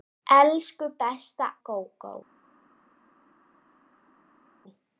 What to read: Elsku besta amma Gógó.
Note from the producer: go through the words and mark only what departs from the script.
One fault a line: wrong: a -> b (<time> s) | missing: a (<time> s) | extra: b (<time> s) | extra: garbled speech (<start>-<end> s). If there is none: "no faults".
missing: amma (1.5 s)